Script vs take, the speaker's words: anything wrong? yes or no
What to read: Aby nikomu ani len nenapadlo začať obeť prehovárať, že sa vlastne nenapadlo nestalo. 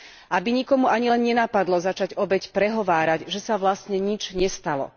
yes